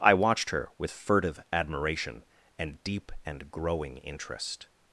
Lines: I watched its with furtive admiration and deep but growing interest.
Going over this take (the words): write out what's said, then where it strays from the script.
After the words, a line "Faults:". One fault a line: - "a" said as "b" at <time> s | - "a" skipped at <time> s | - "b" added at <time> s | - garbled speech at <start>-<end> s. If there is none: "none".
I watched her with furtive admiration and deep and growing interest.
Faults:
- "its" said as "her" at 0.5 s
- "but" said as "and" at 3.2 s